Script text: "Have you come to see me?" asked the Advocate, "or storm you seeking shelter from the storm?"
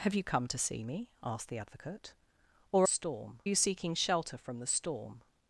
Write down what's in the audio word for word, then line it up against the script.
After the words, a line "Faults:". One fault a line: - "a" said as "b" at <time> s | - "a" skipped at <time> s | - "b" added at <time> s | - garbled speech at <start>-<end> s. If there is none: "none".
"Have you come to see me?" asked the Advocate, "or storm you seeking shelter from the storm?"
Faults:
none